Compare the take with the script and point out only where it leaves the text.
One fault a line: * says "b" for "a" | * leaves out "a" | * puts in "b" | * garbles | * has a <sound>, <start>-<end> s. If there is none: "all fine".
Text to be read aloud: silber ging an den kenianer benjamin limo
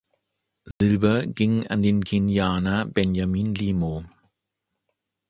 * has a dropout, 0.7-0.8 s